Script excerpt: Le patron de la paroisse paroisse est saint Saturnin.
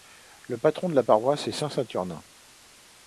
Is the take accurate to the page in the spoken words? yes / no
no